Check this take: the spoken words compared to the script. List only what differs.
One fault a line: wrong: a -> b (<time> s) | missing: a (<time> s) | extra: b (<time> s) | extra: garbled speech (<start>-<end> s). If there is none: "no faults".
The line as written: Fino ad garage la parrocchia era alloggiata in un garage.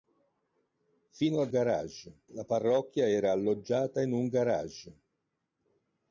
no faults